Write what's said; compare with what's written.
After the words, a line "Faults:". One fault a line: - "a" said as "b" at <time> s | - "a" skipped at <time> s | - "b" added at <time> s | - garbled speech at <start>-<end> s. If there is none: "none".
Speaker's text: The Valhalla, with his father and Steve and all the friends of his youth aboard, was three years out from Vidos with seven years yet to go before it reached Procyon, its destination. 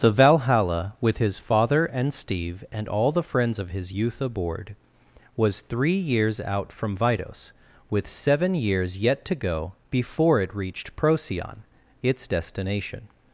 The Valhalla, with his father and Steve and all the friends of his youth aboard, was three years out from Vidos with seven years yet to go before it reached Procyon, its destination.
Faults:
none